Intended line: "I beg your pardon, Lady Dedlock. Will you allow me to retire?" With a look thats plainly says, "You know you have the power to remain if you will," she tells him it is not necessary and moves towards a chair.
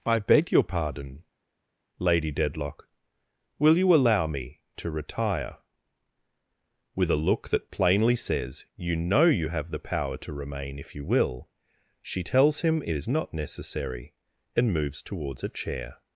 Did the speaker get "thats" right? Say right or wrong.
wrong